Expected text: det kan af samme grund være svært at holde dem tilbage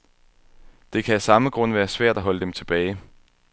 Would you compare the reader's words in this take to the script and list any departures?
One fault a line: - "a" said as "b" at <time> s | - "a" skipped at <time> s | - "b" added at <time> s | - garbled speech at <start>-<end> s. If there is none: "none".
none